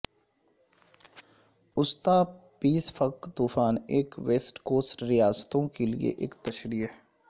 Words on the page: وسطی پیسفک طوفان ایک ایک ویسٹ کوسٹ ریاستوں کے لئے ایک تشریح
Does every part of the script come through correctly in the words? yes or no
no